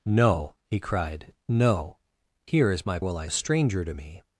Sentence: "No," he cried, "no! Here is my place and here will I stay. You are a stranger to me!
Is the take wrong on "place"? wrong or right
wrong